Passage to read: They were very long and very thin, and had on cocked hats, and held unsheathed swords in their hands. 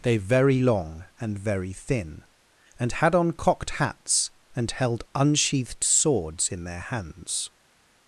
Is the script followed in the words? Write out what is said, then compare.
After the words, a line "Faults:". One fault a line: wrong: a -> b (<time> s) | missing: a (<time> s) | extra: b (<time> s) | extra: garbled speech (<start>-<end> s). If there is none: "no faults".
They very long and very thin, and had on cocked hats, and held unsheathed swords in their hands.
Faults:
missing: were (0.2 s)